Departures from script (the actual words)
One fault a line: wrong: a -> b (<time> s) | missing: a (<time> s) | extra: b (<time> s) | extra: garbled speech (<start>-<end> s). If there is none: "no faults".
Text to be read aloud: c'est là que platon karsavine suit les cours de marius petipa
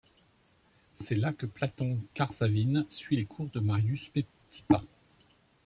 no faults